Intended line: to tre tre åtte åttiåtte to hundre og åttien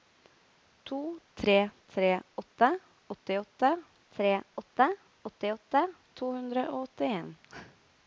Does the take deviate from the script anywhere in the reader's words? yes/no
yes